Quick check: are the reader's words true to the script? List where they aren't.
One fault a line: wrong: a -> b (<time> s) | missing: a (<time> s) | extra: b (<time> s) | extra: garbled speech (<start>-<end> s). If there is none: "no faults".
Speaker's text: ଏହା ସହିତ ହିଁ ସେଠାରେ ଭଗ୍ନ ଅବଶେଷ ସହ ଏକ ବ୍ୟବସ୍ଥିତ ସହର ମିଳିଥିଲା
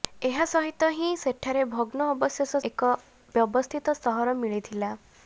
missing: ସହ (2.6 s)